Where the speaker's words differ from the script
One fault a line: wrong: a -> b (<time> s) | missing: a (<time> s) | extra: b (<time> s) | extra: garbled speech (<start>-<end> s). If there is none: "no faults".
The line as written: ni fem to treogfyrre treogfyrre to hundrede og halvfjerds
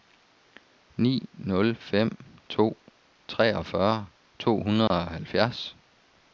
extra: nul (1.5 s)
missing: treogfyrre (4.1 s)